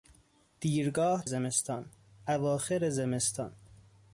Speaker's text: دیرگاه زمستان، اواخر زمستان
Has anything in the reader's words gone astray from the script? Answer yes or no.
no